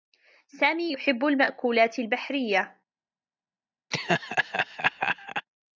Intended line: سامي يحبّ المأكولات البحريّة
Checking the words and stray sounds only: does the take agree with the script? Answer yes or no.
no